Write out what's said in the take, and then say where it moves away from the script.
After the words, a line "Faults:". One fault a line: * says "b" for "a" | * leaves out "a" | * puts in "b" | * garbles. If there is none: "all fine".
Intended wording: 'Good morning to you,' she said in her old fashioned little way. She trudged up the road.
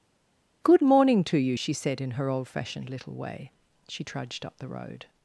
'Good morning to you,' she said in her old fashioned little way. She trudged up the road.
Faults:
all fine